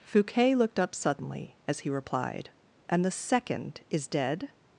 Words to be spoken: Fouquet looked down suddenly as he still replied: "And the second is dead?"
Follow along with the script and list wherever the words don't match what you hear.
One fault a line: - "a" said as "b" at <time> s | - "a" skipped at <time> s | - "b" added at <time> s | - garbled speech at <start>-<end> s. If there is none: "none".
- "down" said as "up" at 0.8 s
- "still" skipped at 1.9 s